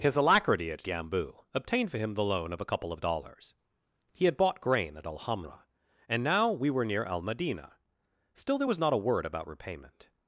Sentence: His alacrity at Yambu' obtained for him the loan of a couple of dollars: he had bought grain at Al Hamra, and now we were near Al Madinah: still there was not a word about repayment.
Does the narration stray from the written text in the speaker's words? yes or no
no